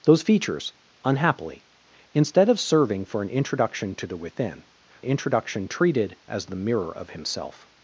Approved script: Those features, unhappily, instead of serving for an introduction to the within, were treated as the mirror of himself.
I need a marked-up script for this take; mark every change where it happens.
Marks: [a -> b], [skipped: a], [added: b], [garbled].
Those features, unhappily, instead of serving for an introduction to the within, [were -> introduction] treated as the mirror of himself.